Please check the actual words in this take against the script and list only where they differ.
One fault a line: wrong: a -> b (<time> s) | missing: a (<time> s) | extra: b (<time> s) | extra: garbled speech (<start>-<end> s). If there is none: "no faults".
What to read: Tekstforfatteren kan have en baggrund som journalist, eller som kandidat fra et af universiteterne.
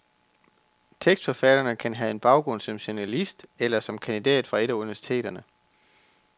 no faults